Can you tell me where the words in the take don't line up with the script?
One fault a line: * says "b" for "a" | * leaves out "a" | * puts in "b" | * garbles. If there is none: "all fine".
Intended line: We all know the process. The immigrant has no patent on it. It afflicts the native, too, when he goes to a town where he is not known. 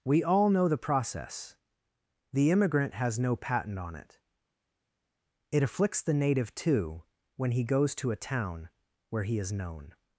* leaves out "not"